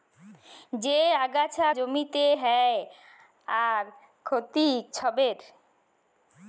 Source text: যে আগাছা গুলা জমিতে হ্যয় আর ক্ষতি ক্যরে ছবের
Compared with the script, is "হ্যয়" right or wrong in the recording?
right